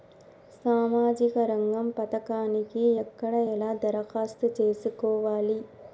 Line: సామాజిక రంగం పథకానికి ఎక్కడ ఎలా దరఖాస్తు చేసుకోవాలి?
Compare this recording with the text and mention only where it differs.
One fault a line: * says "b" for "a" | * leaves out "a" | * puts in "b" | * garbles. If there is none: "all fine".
all fine